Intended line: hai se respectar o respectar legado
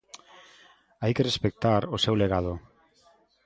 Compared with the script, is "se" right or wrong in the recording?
wrong